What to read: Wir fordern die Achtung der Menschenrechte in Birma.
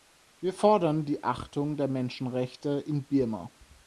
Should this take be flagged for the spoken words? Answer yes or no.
no